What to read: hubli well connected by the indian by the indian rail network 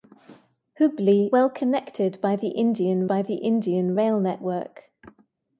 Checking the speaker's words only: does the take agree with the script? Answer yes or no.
yes